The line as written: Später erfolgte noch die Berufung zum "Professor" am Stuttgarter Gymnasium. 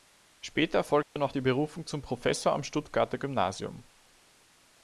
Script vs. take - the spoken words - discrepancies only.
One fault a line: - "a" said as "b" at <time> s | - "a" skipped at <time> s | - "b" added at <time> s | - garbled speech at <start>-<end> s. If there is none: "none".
none